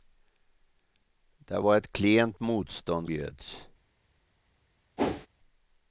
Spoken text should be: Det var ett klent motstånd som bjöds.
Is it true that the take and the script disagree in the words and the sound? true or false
true